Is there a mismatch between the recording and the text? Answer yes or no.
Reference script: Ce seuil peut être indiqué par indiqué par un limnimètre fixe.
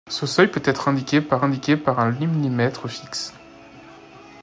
no